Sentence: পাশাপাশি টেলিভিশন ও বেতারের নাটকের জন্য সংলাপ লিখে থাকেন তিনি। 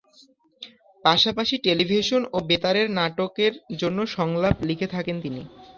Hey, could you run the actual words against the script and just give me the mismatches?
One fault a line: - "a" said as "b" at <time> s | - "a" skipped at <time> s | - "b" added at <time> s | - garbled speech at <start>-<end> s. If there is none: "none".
none